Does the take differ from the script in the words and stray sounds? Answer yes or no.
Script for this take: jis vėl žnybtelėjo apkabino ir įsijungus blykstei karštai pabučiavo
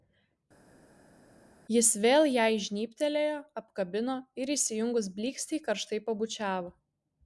yes